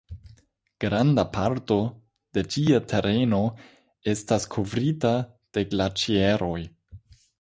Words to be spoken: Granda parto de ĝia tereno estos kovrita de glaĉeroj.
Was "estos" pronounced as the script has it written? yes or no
no